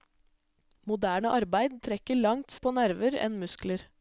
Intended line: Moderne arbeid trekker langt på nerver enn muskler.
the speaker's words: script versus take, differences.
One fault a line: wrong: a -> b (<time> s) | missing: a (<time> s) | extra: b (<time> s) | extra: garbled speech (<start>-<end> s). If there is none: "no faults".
no faults